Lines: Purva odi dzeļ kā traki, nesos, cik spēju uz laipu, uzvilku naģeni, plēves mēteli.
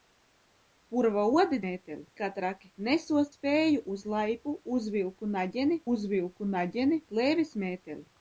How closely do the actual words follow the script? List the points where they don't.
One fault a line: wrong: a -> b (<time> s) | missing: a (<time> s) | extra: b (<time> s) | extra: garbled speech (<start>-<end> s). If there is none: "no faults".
wrong: dzeļ -> mēteli (1.7 s)
missing: cik (3.3 s)
extra: uzvilku naģeni (5.9 s)